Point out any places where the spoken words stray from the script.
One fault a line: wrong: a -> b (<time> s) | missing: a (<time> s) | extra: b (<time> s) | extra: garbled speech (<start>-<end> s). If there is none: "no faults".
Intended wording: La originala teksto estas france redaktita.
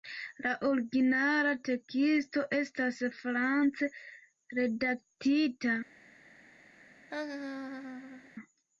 no faults